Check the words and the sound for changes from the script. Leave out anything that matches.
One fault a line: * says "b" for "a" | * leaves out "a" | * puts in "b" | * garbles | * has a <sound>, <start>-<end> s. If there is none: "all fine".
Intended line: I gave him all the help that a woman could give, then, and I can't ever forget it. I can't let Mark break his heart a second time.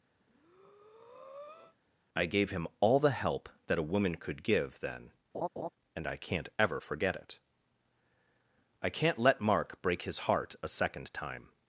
* has a breath, 0.2-1.8 s
* has a laugh, 5.3-5.7 s